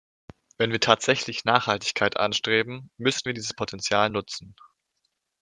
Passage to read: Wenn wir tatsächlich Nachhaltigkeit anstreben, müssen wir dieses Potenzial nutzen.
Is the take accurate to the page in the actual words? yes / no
yes